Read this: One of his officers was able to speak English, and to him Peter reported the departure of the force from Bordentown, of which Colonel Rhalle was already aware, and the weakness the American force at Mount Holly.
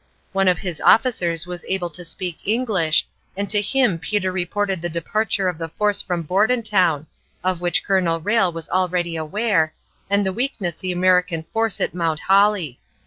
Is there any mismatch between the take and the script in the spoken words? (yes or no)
no